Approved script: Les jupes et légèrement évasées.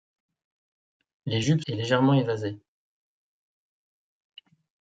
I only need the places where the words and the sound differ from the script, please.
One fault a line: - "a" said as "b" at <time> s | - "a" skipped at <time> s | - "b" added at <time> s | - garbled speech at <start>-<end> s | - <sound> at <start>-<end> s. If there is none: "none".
none